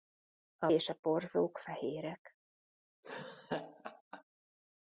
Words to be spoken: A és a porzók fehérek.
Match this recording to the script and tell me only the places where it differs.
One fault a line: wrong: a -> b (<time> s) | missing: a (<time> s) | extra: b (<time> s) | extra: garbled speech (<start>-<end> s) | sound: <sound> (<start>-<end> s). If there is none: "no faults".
sound: laugh (3.0-4.2 s)